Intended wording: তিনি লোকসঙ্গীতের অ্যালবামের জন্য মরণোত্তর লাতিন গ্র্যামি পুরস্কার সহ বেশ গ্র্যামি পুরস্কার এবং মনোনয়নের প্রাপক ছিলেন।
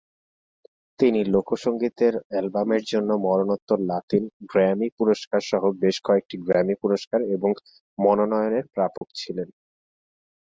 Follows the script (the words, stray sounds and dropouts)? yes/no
no